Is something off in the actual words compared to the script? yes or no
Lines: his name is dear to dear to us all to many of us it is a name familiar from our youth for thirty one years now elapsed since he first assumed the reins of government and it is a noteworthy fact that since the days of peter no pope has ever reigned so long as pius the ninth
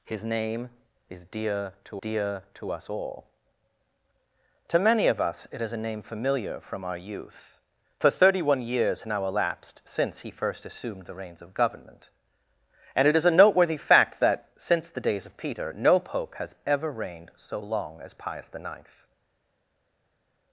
no